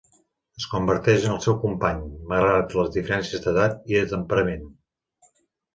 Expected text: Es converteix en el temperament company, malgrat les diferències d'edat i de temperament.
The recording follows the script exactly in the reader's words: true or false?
false